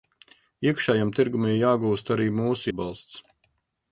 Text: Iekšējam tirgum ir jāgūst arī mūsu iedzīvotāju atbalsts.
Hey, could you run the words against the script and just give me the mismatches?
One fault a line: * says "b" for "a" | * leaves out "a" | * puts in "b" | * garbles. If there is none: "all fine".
* leaves out "iedzīvotāju"